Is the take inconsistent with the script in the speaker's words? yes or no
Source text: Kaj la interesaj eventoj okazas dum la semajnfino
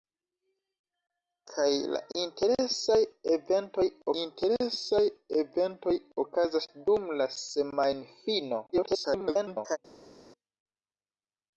yes